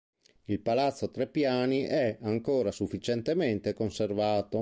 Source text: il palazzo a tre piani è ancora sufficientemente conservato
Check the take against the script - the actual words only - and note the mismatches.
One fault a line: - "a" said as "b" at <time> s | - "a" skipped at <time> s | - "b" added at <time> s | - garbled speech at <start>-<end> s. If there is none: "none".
none